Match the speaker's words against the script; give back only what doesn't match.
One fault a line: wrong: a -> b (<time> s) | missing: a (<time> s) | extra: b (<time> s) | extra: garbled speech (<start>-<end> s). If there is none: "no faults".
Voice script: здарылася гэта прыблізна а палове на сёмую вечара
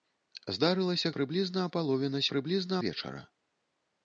missing: гэта (1.1 s)
wrong: сёмую -> прыблізна (2.3 s)